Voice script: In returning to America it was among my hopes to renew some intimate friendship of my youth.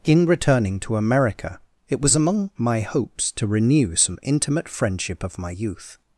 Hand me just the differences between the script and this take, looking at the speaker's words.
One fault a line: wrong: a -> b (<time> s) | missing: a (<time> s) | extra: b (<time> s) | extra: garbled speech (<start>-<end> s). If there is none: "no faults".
no faults